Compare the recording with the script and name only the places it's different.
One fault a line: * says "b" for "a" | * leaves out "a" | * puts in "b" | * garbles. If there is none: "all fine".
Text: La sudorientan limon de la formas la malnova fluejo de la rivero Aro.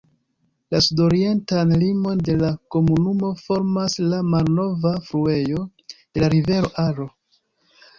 * puts in "komunumo"